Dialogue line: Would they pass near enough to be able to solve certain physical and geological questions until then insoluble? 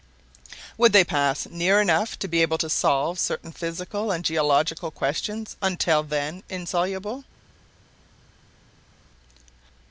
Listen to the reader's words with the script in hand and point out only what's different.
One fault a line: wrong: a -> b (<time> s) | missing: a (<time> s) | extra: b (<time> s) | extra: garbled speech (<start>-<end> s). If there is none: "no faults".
no faults